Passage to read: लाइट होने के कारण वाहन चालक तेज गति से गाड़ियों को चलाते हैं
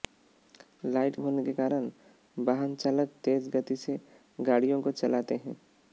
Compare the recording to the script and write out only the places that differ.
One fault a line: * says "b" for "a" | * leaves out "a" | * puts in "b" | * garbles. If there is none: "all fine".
all fine